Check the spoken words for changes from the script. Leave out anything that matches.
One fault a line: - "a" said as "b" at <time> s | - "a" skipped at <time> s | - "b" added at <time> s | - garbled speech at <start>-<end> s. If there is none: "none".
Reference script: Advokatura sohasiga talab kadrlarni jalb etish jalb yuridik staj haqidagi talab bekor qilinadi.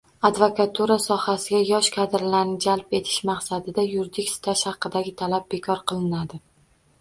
- "talab" said as "yosh" at 1.7 s
- "jalb" said as "maqsadida" at 3.3 s